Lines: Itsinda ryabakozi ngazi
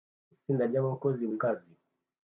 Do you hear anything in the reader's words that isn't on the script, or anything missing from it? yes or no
no